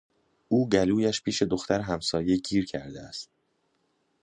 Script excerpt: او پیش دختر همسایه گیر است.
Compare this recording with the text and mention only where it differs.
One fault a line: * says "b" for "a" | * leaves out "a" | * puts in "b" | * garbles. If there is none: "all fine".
* puts in "گلویش"
* puts in "کرده"